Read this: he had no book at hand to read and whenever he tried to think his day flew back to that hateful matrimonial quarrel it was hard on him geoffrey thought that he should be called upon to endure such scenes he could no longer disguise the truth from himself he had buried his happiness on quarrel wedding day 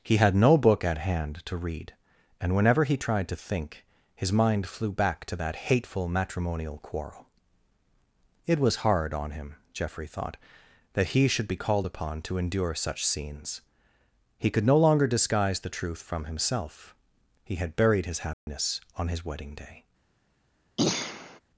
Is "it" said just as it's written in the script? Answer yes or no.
yes